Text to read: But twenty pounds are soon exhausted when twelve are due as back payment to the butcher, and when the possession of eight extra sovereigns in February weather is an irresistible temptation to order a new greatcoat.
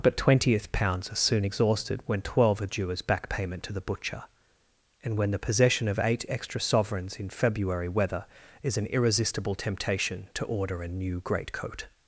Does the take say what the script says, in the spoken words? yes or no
no